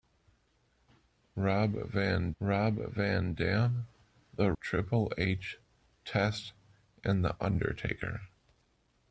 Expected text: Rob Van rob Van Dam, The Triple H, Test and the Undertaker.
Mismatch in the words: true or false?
false